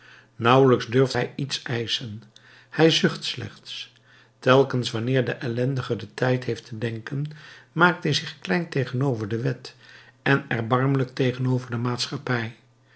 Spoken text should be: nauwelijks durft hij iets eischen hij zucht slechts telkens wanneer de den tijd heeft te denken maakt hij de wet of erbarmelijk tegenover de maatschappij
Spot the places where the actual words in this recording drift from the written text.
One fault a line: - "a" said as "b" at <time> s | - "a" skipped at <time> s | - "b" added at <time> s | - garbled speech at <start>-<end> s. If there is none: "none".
- "ellendige" added at 5.3 s
- "zich klein tegenover" added at 8.1 s
- "of" said as "en" at 10.2 s